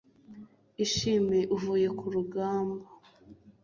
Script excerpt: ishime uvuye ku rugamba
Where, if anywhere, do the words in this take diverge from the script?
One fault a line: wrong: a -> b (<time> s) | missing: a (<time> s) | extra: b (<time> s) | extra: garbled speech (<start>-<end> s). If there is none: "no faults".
no faults